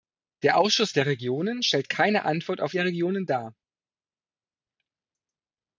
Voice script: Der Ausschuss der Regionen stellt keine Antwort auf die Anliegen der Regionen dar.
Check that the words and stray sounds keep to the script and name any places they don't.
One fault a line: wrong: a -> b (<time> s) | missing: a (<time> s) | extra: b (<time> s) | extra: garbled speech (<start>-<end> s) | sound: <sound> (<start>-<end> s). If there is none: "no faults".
missing: die Anliegen (2.7 s)